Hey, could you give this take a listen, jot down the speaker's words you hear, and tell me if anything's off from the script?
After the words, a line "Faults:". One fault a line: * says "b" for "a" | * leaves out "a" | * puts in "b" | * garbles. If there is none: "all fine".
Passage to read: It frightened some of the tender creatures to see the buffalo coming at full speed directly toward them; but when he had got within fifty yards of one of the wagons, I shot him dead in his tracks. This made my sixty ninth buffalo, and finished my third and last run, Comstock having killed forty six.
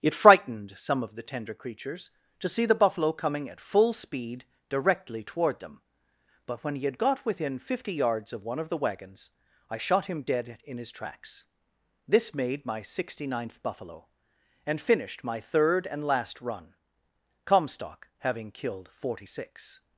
It frightened some of the tender creatures to see the buffalo coming at full speed directly toward them; but when he had got within fifty yards of one of the wagons, I shot him dead in his tracks. This made my sixty ninth buffalo, and finished my third and last run, Comstock having killed forty six.
Faults:
all fine